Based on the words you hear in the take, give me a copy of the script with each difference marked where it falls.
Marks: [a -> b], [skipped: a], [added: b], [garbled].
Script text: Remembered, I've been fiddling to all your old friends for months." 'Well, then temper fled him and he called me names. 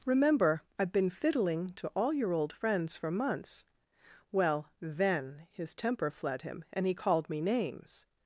[Remembered, -> Remember] I've been fiddling to all your old friends for months." 'Well, then [added: his] temper fled him and he called me names.